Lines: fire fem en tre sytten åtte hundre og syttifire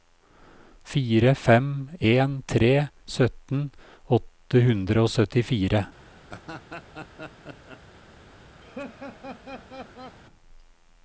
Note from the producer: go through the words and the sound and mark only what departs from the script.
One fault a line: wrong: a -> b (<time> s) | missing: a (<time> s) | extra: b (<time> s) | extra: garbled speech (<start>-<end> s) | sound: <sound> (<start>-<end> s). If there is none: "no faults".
sound: laugh (6.3-7.8 s)
sound: laugh (8.6-10.2 s)